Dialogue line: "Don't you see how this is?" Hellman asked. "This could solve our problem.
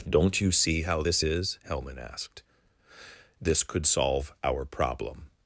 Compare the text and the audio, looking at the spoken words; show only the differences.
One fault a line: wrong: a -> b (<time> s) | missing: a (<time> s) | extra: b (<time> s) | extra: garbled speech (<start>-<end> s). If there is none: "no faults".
no faults